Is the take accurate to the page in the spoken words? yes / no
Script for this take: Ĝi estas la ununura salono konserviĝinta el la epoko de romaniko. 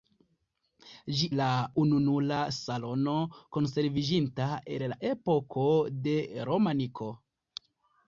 no